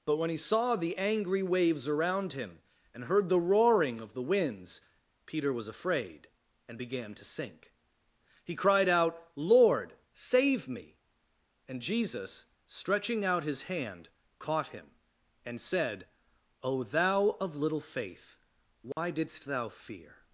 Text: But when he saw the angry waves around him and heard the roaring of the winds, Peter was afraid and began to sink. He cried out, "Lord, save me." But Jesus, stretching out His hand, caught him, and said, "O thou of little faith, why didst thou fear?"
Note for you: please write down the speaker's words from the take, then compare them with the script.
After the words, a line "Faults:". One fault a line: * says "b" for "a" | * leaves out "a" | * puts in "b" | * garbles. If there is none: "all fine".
But when he saw the angry waves around him and heard the roaring of the winds, Peter was afraid and began to sink. He cried out, "Lord, save me." And Jesus, stretching out His hand, caught him, and said, "O thou of little faith, why didst thou fear?"
Faults:
* says "And" for "But"